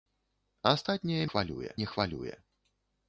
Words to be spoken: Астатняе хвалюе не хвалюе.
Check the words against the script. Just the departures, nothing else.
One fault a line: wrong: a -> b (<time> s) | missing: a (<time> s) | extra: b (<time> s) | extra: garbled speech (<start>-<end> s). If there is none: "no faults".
no faults